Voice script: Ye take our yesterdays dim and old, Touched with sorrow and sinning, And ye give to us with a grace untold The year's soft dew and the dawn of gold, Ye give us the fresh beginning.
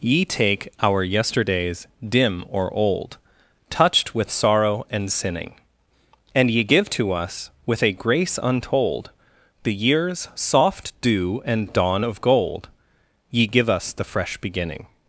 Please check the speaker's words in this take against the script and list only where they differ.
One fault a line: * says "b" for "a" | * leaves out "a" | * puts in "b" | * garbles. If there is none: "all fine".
* says "or" for "and"
* leaves out "the"